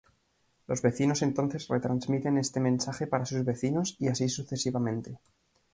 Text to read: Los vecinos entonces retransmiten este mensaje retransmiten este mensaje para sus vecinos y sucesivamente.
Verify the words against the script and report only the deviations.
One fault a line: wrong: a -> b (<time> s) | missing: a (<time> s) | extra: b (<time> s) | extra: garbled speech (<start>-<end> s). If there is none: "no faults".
missing: retransmiten este mensaje (3.0 s)
extra: así (4.1 s)